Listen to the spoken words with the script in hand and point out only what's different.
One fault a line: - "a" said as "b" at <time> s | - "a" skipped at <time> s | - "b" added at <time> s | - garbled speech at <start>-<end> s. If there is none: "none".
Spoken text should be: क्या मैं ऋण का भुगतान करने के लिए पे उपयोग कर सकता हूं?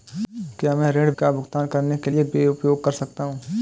none